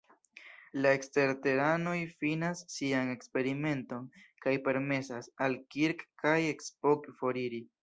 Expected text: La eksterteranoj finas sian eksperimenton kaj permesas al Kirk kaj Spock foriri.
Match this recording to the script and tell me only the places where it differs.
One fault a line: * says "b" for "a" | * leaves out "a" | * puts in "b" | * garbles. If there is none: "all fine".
all fine